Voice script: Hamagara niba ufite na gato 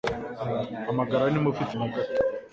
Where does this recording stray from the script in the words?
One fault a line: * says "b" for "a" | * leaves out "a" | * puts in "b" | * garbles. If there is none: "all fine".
all fine